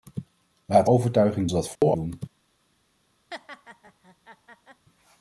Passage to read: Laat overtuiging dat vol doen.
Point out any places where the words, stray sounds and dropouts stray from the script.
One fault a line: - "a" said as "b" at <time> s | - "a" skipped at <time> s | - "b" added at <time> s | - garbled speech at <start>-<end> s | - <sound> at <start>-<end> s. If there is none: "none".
- dropout at 1.8-1.8 s
- laugh at 3.3-4.9 s